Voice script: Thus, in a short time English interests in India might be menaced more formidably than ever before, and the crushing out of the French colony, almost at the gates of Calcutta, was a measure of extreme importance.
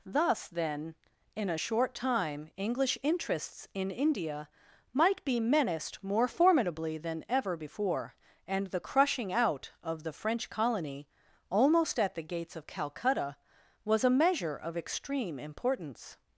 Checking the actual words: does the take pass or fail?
fail